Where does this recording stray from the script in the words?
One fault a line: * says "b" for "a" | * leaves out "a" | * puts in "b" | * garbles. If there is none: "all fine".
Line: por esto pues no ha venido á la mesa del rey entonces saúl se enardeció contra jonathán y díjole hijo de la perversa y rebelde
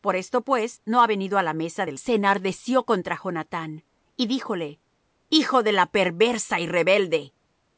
* leaves out "rey entonces saúl"